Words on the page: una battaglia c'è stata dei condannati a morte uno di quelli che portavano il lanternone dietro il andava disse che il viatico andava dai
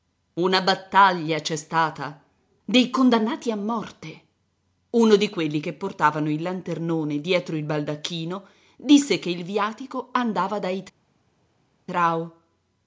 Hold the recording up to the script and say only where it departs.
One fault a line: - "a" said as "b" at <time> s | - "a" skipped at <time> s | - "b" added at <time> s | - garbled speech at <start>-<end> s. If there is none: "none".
- "andava" said as "baldacchino" at 7.6 s